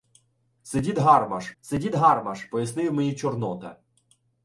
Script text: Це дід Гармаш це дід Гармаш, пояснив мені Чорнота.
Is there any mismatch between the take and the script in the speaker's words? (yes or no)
no